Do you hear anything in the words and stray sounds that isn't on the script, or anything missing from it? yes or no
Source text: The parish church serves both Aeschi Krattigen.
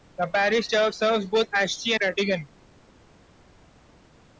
no